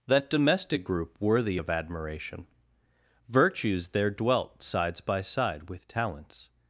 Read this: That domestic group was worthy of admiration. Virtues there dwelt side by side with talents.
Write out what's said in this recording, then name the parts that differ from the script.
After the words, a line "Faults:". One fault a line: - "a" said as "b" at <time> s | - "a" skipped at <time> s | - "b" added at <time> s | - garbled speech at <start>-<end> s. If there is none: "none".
That domestic group worthy of admiration. Virtues there dwelt sides by side with talents.
Faults:
- "was" skipped at 1.2 s
- "side" said as "sides" at 4.6 s